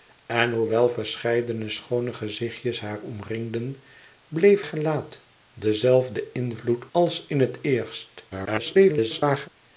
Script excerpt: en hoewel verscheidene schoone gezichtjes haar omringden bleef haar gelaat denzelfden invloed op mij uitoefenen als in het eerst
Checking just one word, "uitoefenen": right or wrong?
wrong